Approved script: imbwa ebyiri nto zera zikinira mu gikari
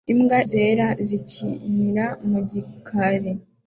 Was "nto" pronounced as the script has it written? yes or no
no